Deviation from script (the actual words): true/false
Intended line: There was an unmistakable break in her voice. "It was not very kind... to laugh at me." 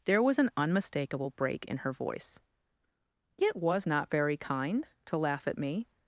false